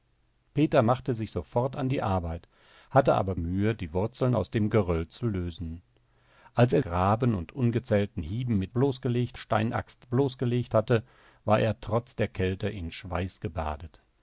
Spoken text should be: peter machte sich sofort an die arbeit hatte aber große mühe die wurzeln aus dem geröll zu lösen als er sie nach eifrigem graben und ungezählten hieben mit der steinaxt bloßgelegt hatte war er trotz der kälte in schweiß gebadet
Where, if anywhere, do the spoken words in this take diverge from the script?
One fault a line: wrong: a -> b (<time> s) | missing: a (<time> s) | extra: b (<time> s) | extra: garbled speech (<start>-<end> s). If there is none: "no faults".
missing: große (3.3 s)
missing: sie nach eifrigem (6.8 s)
wrong: der -> bloßgelegt (8.7 s)